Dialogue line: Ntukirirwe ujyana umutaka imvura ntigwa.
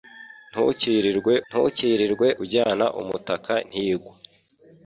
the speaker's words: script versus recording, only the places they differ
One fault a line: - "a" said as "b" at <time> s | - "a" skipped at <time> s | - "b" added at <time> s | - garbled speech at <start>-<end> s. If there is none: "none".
- "ntukirirwe" added at 1.5 s
- "imvura" skipped at 3.5 s